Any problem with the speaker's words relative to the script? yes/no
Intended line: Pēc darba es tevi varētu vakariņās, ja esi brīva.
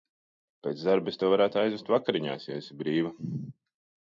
yes